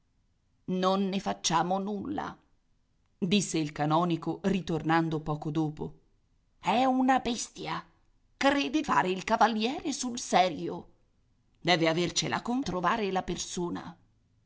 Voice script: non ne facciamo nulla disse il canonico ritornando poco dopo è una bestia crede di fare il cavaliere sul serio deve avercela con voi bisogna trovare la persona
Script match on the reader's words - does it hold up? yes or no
no